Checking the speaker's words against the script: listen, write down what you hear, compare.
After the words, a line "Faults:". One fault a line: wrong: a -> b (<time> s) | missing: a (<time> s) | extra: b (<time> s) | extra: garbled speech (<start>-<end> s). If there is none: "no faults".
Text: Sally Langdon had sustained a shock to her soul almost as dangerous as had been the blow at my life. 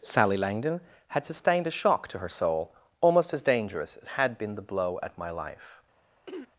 Sally Langdon had sustained a shock to her soul almost as dangerous as had been the blow at my life.
Faults:
no faults